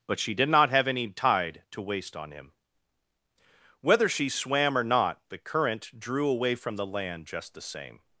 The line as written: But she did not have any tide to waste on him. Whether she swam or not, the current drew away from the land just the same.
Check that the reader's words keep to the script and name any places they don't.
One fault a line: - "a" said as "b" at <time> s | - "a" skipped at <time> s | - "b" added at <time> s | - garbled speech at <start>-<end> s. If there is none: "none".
none